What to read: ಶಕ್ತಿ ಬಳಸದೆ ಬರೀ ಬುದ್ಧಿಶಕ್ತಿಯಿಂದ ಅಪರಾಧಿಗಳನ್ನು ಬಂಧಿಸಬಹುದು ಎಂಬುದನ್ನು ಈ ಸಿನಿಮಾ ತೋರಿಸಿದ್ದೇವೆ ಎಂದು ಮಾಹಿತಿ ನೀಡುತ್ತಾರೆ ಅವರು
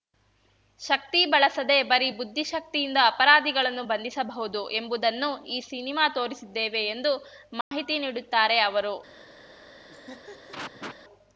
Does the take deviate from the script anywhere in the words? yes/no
no